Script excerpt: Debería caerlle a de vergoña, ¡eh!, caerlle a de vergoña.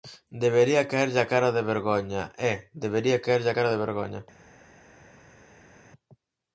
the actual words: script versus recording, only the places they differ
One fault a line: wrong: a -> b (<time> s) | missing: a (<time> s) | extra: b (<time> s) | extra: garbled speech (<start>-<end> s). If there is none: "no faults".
extra: cara (1.3 s)
extra: debería (2.8 s)
extra: cara (3.6 s)